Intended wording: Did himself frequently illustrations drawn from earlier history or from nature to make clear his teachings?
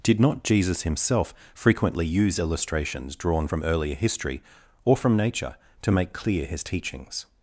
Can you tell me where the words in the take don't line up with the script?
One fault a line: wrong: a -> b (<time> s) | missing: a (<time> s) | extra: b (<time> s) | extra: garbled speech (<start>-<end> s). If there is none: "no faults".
extra: not Jesus (0.2 s)
extra: use (2.0 s)